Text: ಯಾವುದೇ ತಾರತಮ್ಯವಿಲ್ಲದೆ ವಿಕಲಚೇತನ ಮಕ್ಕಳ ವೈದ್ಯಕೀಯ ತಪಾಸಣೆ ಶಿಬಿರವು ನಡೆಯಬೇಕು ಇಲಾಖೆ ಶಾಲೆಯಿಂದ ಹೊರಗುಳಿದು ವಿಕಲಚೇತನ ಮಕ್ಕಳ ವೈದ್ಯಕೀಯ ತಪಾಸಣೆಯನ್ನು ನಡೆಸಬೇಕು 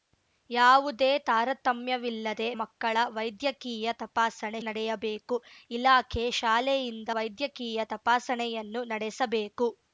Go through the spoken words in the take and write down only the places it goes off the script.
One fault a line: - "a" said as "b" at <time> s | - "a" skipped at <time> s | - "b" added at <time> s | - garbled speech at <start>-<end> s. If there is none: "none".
- "ವಿಕಲಚೇತನ" skipped at 2.5 s
- "ಶಿಬಿರವು" skipped at 4.6 s
- "ಹೊರಗುಳಿದು ವಿಕಲಚೇತನ ಮಕ್ಕಳ" skipped at 7.1 s